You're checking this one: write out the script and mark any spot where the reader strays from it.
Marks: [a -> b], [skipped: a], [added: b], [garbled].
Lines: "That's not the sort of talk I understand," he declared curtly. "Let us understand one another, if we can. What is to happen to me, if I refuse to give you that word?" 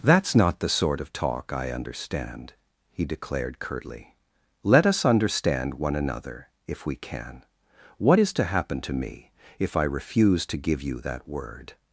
"That's not the sort of talk I understand," he declared curtly. "Let us understand one another, if we can. What is to happen to me, if I refuse to give you that word?"